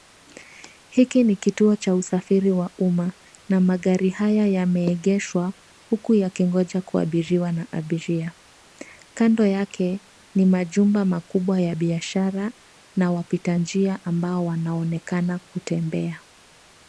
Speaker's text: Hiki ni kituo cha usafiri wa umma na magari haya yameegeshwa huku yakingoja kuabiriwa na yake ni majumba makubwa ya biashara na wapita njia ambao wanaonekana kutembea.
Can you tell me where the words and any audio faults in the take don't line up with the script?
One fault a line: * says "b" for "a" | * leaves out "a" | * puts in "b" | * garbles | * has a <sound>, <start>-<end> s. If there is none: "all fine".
* puts in "abiria Kando"